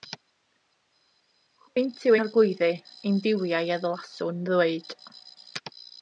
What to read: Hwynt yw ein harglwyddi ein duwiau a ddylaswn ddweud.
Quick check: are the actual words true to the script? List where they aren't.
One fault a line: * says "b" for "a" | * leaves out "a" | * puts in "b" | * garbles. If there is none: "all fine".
* leaves out "ein"